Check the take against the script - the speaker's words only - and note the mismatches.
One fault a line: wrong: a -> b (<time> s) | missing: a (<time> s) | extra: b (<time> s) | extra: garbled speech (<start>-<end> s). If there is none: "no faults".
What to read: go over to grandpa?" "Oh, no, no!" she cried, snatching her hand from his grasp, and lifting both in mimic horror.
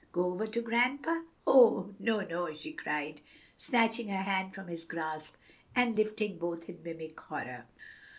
no faults